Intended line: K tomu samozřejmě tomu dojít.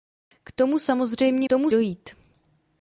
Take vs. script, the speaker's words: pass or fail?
pass